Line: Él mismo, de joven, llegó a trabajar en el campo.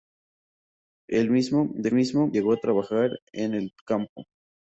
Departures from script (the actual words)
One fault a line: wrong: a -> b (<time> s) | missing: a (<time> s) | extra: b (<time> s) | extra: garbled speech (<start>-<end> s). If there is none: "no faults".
wrong: joven -> mismo (1.9 s)